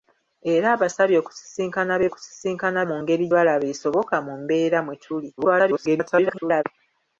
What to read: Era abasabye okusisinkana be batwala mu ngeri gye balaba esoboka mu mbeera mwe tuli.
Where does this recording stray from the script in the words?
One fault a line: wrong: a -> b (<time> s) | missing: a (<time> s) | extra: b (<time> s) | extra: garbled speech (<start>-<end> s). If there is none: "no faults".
wrong: batwala -> okusisinkana (2.1 s)
missing: gye (3.2 s)
extra: garbled speech (5.4-6.6 s)